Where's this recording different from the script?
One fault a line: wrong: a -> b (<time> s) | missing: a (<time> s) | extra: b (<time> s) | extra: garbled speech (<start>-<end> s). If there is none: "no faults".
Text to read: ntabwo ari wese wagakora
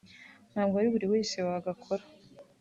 extra: buri (0.9 s)